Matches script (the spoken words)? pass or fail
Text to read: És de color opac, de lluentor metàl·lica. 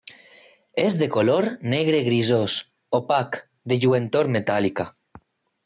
fail